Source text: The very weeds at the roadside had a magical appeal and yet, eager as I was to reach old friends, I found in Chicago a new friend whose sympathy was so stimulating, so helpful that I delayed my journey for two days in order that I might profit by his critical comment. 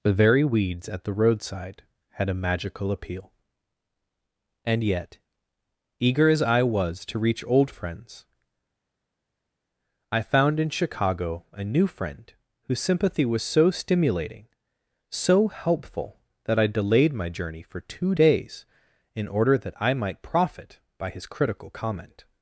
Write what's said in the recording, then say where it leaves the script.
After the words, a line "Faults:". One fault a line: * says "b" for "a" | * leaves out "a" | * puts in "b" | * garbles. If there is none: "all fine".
The very weeds at the roadside had a magical appeal and yet, eager as I was to reach old friends, I found in Chicago a new friend whose sympathy was so stimulating, so helpful that I delayed my journey for two days in order that I might profit by his critical comment.
Faults:
all fine